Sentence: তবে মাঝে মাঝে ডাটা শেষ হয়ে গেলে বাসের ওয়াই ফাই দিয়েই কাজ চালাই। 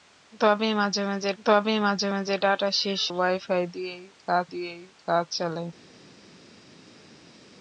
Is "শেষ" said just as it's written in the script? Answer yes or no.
no